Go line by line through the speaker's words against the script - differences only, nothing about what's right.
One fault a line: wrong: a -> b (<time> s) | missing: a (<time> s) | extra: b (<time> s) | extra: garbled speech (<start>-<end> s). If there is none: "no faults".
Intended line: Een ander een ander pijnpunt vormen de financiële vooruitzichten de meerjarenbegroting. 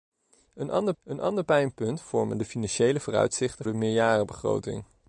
no faults